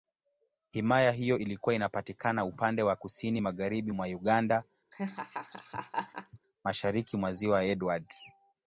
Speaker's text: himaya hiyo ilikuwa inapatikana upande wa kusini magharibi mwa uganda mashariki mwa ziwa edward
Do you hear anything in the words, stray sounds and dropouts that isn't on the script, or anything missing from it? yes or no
yes